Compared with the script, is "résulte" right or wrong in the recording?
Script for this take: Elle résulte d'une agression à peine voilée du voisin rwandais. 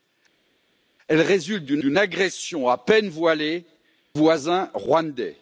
right